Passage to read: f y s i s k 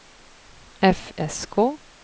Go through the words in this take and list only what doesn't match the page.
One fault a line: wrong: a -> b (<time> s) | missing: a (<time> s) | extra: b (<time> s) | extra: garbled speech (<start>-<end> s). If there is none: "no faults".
missing: y s i (1.1 s)